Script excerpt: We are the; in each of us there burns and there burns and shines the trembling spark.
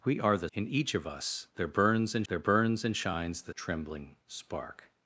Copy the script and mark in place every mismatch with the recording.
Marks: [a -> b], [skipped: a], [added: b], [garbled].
We are the; in each of us there burns and there burns and shines the trembling spark.